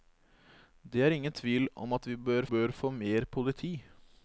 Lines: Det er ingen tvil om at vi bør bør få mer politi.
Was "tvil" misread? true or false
false